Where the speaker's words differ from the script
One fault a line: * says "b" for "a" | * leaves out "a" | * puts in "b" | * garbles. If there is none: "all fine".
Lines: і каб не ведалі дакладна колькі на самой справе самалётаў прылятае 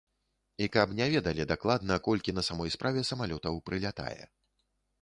all fine